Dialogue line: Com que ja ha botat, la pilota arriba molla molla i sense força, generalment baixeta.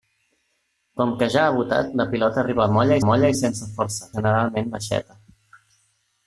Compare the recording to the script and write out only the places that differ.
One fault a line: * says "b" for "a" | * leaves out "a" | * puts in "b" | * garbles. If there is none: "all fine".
all fine